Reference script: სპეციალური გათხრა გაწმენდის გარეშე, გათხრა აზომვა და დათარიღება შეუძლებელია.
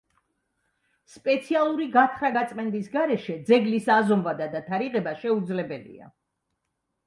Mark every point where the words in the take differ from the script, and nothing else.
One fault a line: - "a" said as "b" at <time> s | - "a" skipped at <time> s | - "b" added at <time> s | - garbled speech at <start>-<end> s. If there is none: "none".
- "გათხრა" said as "ძეგლის" at 3.5 s